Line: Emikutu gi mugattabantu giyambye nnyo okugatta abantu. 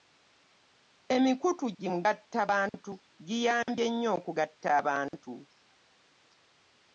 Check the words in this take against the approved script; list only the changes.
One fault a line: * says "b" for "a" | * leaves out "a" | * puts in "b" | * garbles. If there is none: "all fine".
all fine